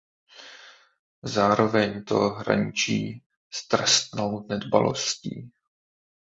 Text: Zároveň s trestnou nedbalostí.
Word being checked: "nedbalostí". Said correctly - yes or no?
yes